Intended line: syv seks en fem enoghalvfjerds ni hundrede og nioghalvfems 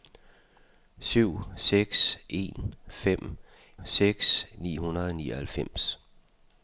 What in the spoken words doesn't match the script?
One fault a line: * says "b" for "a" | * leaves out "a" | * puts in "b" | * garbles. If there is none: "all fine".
* says "seks" for "enoghalvfjerds"